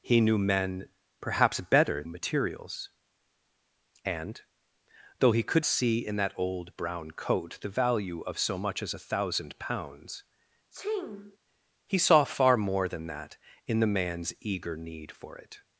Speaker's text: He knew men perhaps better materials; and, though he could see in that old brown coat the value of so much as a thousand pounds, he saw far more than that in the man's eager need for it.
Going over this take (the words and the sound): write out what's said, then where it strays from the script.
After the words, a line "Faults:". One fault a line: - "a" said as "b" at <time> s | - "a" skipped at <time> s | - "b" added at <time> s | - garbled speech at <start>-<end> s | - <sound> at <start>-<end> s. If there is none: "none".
He knew men perhaps better materials; and, though he could see in that old brown coat the value of so much as a thousand pounds, he saw far more than that in the man's eager need for it.
Faults:
- sneeze at 10.7-11.4 s